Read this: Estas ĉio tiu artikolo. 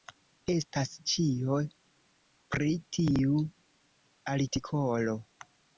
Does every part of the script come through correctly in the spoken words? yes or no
no